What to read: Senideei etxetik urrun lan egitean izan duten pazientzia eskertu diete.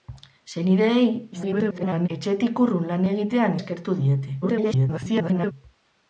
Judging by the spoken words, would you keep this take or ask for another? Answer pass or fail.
fail